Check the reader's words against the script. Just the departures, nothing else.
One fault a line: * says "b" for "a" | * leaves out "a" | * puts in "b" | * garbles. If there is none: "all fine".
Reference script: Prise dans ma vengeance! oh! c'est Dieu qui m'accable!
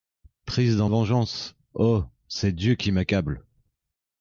* leaves out "ma"